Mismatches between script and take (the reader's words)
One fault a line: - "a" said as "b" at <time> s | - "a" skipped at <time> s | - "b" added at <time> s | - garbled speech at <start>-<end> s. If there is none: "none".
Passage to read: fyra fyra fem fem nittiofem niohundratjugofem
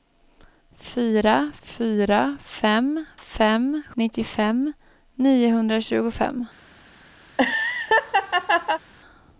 none